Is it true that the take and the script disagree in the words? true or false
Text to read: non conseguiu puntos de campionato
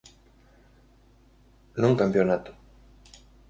true